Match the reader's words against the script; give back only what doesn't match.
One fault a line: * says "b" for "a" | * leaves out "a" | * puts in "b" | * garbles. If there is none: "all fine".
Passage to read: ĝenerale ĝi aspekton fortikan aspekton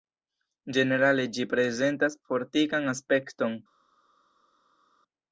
* says "prezentas" for "aspekton"